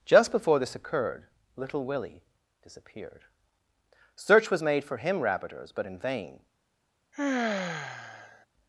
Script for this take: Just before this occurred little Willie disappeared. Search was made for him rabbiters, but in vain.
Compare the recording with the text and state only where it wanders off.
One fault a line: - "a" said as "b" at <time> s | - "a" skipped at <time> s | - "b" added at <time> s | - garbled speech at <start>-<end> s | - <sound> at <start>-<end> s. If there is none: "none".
- sigh at 7.1-8.5 s